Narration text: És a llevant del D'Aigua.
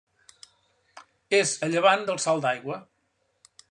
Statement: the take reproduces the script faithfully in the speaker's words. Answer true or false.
false